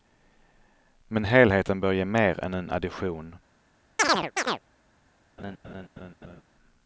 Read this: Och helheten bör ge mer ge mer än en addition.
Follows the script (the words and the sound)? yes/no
no